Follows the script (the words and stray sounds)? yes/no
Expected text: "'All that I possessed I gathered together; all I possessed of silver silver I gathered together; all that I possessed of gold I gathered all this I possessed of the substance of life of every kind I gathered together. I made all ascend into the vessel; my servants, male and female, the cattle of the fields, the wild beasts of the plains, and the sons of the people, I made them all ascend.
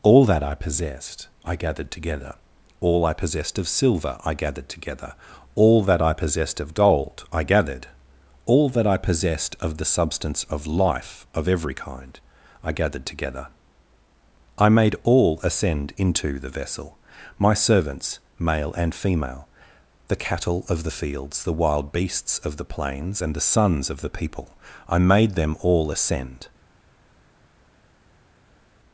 no